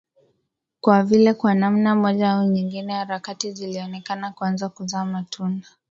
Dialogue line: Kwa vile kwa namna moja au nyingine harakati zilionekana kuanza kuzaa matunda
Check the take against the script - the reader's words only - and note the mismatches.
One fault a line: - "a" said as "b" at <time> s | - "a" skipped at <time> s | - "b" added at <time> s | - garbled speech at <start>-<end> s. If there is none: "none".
none